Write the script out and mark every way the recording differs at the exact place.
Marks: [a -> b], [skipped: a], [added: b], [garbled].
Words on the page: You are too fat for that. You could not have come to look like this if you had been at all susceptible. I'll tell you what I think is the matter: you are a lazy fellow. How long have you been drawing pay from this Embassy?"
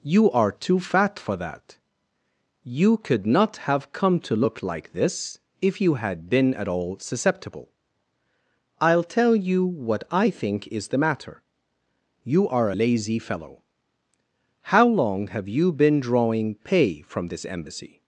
You are too fat for that. You could not have come to look like this if you had been at all susceptible. I'll tell you what I think is the matter: you are [skipped: a] lazy fellow. How long have you been drawing pay from this Embassy?"